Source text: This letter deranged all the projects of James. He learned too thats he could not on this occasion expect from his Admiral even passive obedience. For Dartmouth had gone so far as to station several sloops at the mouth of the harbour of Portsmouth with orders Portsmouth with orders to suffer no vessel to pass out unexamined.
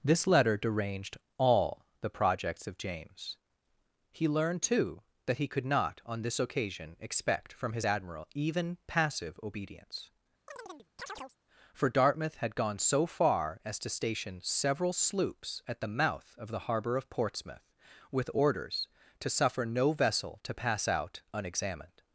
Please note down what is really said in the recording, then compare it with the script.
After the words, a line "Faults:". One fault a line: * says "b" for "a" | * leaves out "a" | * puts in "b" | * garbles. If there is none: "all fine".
This letter deranged all the projects of James. He learned too that he could not on this occasion expect from his Admiral even passive obedience. For Dartmouth had gone so far as to station several sloops at the mouth of the harbour of Portsmouth with orders to suffer no vessel to pass out unexamined.
Faults:
* says "that" for "thats"
* leaves out "Portsmouth with orders"